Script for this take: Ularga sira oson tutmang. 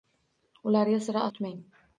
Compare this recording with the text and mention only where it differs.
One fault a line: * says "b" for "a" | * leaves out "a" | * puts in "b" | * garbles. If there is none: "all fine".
* leaves out "oson"